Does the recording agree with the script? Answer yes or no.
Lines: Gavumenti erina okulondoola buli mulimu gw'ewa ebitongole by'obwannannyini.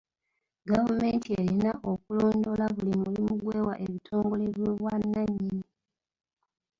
yes